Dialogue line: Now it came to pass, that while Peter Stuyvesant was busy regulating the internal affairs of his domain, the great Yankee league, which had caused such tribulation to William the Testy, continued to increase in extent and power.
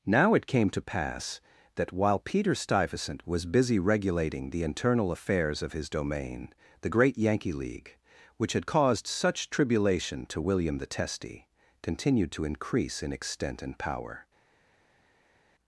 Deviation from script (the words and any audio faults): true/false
false